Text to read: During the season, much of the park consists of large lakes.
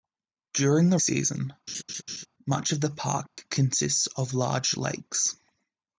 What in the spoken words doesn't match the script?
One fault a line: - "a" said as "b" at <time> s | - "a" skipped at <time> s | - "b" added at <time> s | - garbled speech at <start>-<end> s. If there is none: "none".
none